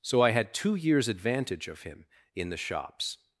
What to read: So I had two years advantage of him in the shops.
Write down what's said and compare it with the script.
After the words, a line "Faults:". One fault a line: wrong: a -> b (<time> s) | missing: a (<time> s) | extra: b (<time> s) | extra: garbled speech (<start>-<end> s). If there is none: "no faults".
So I had two years advantage of him in the shops.
Faults:
no faults